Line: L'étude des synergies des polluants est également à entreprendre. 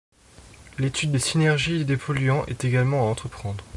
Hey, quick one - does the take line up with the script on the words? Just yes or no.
yes